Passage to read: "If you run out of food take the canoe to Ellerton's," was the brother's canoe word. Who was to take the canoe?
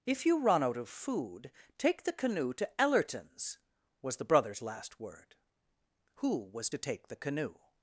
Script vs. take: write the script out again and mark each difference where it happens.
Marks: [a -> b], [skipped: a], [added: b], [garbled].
"If you run out of food take the canoe to Ellerton's," was the brother's [canoe -> last] word. Who was to take the canoe?